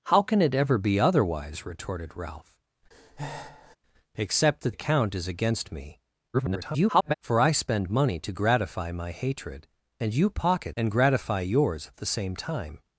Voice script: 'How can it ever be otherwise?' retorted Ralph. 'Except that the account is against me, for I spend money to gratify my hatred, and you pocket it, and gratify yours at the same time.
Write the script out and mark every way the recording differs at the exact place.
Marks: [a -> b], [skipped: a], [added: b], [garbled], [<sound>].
'How can it ever be otherwise?' retorted Ralph. [breath] 'Except that [skipped: the] account is against me, [garbled] for I spend money to gratify my hatred, and you pocket [skipped: it,] and gratify yours at the same time.